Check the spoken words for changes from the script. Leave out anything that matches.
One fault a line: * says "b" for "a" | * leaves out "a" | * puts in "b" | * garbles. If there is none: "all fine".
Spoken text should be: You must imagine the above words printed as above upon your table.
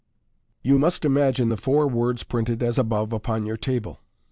* says "four" for "above"